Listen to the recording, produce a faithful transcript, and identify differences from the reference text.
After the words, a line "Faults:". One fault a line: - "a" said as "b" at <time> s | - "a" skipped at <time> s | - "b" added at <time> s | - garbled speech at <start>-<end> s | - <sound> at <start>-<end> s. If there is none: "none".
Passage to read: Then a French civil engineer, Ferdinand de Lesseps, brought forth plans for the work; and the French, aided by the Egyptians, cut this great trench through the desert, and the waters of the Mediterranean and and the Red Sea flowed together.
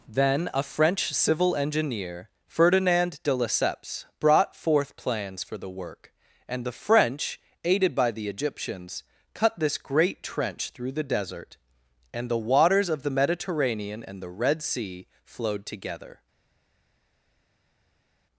Then a French civil engineer, Ferdinand de Lesseps, brought forth plans for the work; and the French, aided by the Egyptians, cut this great trench through the desert, and the waters of the Mediterranean and the Red Sea flowed together.
Faults:
- "and" skipped at 14.2 s